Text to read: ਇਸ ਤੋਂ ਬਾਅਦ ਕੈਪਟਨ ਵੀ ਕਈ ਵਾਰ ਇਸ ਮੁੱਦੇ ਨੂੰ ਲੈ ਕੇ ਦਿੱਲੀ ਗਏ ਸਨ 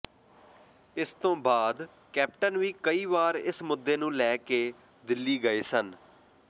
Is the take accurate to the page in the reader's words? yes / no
yes